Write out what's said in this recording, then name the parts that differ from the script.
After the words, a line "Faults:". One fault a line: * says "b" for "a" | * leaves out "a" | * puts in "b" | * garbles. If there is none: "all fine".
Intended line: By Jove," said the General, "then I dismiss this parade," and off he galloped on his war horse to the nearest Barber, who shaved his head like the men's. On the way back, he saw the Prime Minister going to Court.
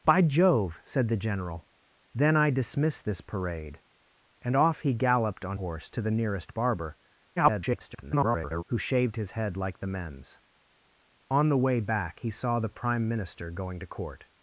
By Jove," said the General, "then I dismiss this parade," and off he galloped on horse to the nearest Barber, [garbled] who shaved his head like the men's. On the way back, he saw the Prime Minister going to Court.
Faults:
* leaves out "his war"
* garbles